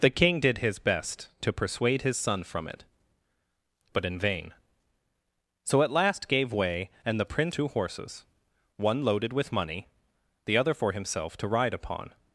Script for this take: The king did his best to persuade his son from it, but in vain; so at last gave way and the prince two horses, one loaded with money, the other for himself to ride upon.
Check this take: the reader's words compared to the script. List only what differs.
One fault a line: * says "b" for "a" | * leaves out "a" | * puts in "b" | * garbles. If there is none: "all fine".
all fine